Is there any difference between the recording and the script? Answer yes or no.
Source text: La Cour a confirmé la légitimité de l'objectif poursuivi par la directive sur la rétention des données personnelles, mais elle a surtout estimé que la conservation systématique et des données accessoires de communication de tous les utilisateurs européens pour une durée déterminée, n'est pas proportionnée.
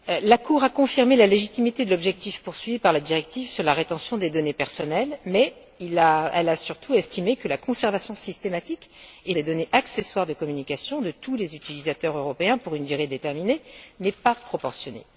no